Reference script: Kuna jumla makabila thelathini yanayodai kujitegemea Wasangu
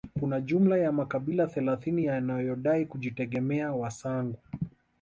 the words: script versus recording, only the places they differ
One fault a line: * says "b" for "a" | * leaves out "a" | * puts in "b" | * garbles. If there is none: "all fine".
* puts in "ya"